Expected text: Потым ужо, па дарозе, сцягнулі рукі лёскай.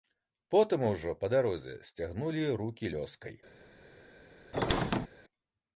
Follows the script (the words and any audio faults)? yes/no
no